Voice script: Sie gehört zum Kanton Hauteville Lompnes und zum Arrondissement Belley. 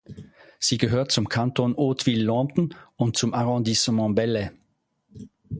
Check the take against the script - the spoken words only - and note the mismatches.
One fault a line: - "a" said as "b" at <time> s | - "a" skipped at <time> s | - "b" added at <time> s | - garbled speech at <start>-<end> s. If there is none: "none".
none